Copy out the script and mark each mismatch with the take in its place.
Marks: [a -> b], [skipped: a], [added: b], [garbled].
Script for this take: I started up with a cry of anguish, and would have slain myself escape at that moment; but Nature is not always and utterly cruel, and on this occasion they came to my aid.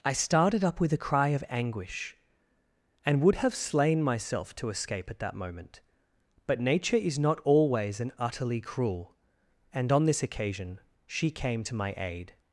I started up with a cry of anguish, and would have slain myself [added: to] escape at that moment; but Nature is not always and utterly cruel, and on this occasion [they -> she] came to my aid.